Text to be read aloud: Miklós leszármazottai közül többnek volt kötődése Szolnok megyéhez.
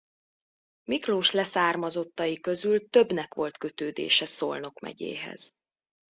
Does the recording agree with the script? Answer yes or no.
yes